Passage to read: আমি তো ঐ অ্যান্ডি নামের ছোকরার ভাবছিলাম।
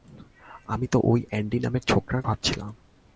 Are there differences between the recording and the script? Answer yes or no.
no